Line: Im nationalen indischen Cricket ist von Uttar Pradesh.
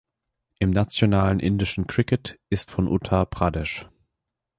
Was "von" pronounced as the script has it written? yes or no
yes